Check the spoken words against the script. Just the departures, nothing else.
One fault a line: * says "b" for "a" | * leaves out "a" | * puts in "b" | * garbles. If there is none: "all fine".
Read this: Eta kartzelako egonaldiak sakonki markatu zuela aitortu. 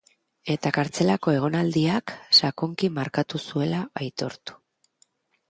all fine